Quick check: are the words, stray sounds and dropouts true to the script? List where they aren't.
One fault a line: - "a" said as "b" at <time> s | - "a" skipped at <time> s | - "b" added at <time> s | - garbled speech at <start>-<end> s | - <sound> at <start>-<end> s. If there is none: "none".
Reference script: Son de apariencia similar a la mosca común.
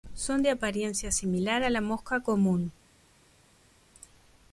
none